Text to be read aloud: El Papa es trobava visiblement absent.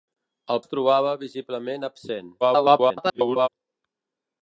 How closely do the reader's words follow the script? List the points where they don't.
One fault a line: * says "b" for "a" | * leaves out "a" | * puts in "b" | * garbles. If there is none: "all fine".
* leaves out "Papa"
* garbles